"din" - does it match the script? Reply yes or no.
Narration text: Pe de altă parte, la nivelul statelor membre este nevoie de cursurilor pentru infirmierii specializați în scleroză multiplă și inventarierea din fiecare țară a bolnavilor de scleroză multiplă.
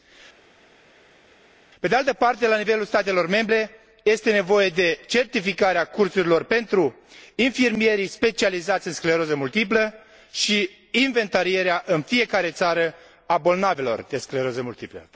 no